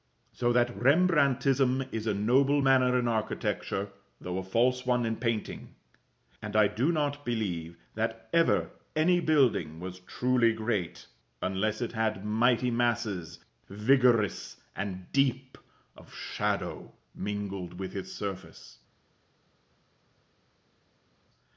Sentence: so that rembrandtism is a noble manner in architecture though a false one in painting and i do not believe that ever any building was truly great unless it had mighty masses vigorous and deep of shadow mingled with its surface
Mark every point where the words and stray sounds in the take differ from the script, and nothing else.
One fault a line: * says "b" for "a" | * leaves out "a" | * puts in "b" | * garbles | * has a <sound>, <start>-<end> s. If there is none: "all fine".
all fine